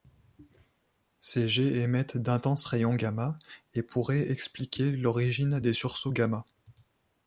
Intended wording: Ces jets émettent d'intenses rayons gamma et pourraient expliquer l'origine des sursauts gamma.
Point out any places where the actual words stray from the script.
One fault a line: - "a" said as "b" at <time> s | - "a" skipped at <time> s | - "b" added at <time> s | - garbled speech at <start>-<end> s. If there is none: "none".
none